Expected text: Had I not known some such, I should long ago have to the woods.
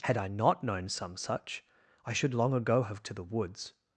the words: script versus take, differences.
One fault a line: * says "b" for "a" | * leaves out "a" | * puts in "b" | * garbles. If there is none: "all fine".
all fine